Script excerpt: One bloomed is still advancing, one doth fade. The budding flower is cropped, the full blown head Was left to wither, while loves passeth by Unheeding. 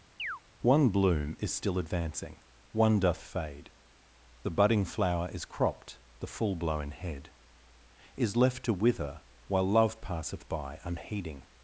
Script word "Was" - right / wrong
wrong